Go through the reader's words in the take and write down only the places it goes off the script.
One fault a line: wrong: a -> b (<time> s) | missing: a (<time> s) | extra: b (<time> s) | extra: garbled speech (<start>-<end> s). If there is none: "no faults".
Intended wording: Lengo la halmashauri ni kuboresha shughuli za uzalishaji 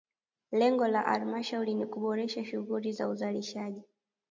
no faults